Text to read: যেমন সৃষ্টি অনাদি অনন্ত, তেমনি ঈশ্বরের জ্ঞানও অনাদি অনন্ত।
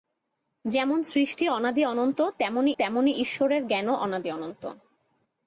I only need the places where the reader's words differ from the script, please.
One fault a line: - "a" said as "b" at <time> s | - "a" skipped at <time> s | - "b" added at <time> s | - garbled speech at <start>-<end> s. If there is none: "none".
- "তেমনি" added at 2.8 s